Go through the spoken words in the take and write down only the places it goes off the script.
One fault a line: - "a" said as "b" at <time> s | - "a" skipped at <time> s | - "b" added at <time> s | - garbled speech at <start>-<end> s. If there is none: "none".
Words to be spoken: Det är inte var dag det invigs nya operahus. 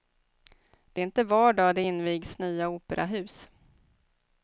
none